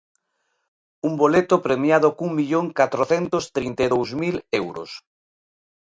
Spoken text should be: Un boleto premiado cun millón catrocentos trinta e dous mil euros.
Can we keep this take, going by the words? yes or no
yes